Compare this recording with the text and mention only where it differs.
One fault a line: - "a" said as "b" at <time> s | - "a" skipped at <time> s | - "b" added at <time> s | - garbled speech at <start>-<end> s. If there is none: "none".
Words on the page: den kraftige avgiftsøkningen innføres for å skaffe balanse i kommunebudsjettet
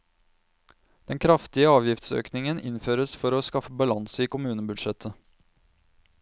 none